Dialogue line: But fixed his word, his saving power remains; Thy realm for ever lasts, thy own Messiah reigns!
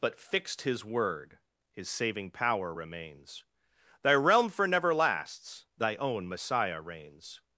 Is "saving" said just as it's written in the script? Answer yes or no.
yes